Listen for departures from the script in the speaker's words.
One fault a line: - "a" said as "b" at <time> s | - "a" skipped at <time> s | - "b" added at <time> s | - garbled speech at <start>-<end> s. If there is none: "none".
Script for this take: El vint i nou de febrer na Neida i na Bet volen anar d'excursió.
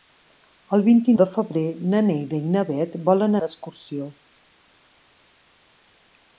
- "nou" skipped at 1.1 s
- "anar" skipped at 3.4 s